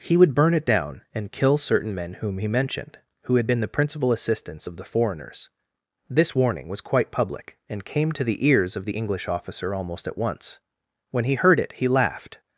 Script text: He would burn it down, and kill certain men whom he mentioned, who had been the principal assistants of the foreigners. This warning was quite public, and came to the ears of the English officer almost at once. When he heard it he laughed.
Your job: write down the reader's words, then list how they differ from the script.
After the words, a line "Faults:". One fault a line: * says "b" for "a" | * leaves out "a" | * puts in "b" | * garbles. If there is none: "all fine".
He would burn it down, and kill certain men whom he mentioned, who had been the principal assistants of the foreigners. This warning was quite public, and came to the ears of the English officer almost at once. When he heard it he laughed.
Faults:
all fine